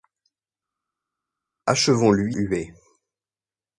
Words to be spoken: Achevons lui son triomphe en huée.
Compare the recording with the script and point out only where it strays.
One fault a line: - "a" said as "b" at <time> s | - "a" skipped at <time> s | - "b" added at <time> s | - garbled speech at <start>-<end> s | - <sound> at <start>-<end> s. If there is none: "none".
- "son triomphe en" skipped at 2.3 s